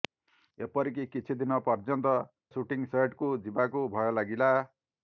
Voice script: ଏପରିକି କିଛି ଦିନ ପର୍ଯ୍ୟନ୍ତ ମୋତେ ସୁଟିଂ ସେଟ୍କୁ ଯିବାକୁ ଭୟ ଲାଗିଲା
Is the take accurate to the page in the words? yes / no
no